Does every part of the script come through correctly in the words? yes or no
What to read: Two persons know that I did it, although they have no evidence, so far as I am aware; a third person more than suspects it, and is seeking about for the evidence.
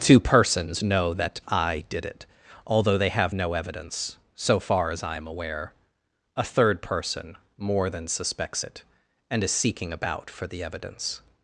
yes